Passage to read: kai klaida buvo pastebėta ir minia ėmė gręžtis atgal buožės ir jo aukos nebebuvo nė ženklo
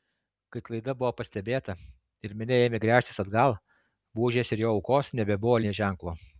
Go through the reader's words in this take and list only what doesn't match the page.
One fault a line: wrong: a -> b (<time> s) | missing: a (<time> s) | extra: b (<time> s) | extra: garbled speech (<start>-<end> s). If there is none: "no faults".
no faults